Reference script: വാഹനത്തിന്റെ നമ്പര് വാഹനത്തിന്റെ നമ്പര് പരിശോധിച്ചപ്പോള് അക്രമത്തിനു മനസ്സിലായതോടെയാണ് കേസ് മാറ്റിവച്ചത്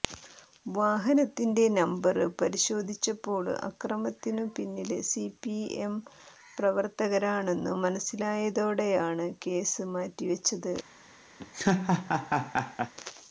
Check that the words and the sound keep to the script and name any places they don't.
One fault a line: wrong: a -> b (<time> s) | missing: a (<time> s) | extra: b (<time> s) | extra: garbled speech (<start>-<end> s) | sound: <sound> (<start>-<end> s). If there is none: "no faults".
wrong: വാഹനത്തിന്റെ നമ്പര് പരിശോധിച്ചപ്പോള് അക്രമത്തിനു -> പരിശോധിച്ചപ്പോള് അക്രമത്തിനു പിന്നില് സിപിഎം പ്രവര്ത്തകരാണെന്നു (2.4 s)
sound: laugh (11.4-12.9 s)